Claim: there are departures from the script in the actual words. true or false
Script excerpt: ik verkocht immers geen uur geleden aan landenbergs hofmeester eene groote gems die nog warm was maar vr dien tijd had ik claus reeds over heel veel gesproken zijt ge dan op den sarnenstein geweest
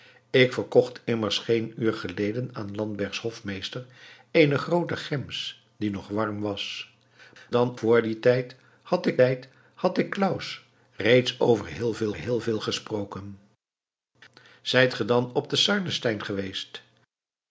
true